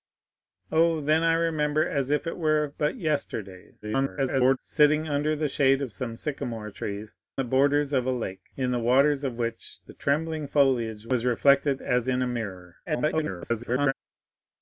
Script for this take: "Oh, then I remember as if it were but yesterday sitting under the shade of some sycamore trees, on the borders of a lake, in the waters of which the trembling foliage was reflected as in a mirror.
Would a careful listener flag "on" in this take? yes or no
yes